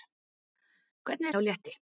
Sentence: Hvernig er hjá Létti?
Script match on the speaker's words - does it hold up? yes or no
yes